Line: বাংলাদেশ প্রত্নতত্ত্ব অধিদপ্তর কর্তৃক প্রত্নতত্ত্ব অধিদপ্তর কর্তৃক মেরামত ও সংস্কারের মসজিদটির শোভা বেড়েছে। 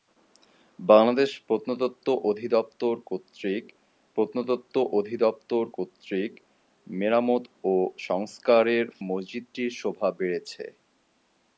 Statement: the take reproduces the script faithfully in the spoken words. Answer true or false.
true